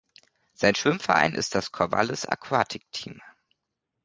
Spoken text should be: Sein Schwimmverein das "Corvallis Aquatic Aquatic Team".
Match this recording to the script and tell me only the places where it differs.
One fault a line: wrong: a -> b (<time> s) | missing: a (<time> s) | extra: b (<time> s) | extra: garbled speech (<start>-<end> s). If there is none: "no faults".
extra: ist (1.3 s)
missing: Aquatic (2.8 s)